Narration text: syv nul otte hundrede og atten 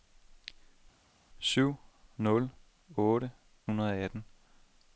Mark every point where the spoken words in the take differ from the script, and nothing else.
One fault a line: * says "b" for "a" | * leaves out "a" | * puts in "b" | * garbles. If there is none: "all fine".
all fine